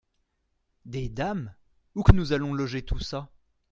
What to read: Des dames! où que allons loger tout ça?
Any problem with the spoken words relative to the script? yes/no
yes